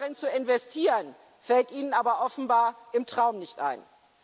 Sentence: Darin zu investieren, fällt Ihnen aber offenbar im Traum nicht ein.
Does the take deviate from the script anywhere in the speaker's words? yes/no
no